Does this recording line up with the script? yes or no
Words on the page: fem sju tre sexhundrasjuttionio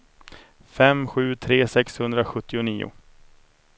yes